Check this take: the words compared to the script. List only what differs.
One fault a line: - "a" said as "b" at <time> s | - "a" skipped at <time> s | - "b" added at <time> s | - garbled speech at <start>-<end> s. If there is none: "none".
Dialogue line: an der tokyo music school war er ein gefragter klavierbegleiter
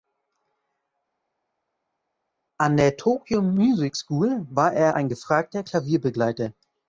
none